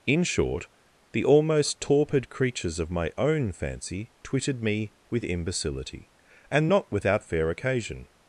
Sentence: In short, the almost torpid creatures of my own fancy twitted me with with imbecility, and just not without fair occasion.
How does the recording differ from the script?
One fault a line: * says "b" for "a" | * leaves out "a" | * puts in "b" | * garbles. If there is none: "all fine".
* leaves out "with"
* leaves out "just"